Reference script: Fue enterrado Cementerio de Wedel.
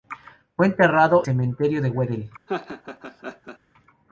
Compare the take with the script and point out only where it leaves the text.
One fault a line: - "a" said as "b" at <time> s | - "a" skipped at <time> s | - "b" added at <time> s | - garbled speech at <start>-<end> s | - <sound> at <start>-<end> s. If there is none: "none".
- laugh at 2.5-3.6 s